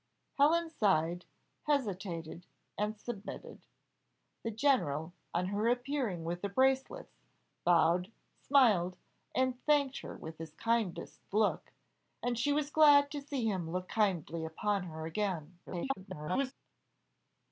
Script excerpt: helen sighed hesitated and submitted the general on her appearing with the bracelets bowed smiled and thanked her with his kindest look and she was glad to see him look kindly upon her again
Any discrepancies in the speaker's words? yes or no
yes